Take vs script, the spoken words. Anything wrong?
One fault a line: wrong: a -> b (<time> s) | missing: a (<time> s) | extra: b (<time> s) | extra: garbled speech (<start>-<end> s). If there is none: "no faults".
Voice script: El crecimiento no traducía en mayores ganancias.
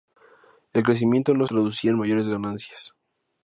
no faults